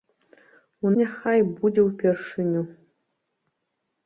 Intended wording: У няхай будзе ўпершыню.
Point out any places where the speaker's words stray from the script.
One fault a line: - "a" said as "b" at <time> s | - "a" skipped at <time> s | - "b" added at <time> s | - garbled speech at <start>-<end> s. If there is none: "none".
none